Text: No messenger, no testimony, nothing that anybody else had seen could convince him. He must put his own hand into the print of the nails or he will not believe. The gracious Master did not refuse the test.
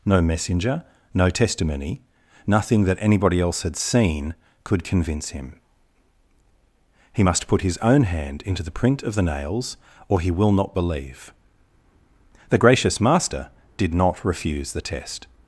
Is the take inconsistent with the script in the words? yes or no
no